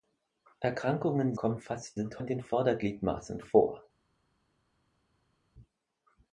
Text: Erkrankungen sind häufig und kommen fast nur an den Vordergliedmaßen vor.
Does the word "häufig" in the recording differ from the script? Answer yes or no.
yes